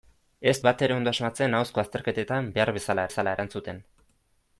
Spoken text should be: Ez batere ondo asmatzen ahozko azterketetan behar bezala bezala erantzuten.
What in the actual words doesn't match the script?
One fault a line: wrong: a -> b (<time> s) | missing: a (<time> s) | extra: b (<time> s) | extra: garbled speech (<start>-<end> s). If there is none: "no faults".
no faults